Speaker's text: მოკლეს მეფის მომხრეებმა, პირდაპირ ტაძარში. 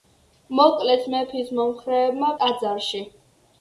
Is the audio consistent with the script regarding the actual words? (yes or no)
no